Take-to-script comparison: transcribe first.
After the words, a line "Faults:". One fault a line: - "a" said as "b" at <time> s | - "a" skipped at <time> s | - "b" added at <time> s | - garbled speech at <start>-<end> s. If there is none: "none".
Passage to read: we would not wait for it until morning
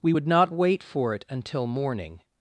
we would not wait for it until morning
Faults:
none